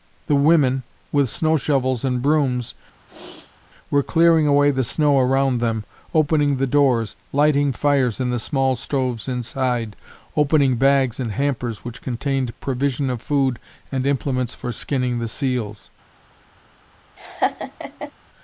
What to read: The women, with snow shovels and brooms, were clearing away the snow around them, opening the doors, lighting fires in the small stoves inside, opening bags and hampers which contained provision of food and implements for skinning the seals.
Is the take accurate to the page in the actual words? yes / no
yes